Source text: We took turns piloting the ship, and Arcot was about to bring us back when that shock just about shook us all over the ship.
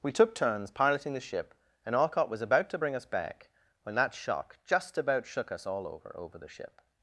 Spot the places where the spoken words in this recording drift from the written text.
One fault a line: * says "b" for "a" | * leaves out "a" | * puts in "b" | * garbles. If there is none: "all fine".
* puts in "over"